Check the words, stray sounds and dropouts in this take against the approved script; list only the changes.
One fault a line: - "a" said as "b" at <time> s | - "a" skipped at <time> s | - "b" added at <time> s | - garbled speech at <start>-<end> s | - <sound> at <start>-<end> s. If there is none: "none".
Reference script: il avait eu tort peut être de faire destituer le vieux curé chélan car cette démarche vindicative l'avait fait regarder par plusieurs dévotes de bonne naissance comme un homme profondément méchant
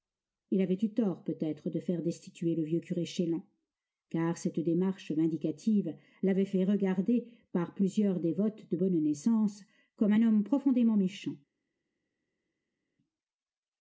none